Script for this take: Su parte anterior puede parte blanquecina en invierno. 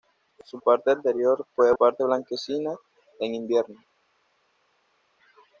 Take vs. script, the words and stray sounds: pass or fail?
pass